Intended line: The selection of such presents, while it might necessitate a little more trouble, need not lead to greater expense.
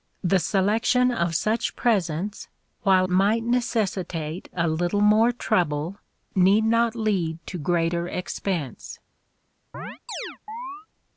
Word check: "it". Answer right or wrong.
wrong